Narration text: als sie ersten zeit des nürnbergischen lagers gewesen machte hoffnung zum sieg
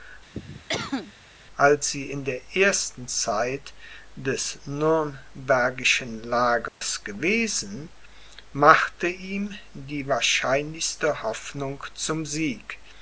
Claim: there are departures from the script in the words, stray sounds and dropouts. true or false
true